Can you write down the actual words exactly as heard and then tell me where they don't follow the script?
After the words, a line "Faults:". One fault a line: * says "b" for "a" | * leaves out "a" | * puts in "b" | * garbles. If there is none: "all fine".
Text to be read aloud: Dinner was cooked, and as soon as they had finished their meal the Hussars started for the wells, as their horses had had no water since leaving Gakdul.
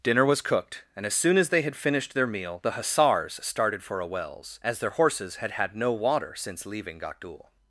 Dinner was cooked, and as soon as they had finished their meal the Hussars started for a wells, as their horses had had no water since leaving Gakdul.
Faults:
* says "a" for "the"